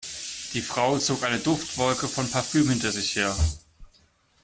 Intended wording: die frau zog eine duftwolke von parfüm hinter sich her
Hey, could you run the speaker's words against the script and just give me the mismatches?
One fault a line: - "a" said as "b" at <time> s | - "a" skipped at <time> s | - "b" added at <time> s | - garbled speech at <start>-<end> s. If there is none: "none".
none